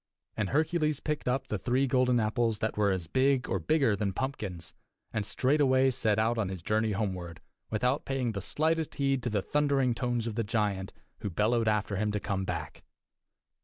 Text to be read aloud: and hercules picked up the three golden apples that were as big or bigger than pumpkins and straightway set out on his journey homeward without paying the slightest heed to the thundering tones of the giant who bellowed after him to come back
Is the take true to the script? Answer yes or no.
yes